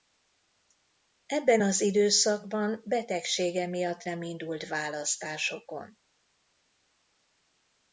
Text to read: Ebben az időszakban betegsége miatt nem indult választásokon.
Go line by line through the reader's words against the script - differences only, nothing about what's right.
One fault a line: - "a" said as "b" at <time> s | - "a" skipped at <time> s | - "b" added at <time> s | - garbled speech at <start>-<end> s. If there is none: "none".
none